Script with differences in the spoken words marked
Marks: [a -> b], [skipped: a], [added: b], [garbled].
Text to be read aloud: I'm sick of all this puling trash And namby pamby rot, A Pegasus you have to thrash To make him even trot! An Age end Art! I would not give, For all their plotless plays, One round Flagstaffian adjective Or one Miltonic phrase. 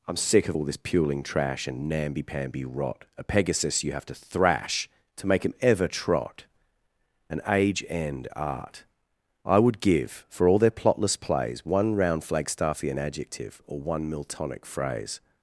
I'm sick of all this puling trash And namby pamby rot, A Pegasus you have to thrash To make him [even -> ever] trot! An Age end Art! I would [skipped: not] give, For all their plotless plays, One round Flagstaffian adjective Or one Miltonic phrase.